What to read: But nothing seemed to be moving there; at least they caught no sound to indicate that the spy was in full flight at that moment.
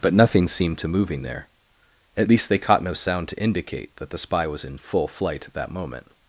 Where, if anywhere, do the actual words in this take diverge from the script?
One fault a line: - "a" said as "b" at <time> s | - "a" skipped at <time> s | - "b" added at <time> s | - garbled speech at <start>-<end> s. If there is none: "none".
- "be" skipped at 0.9 s